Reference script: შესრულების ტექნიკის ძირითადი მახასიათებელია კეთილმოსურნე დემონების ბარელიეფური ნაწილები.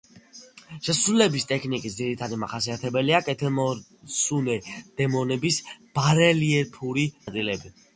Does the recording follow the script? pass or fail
pass